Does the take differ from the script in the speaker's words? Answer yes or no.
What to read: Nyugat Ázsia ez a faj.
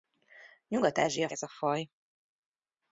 no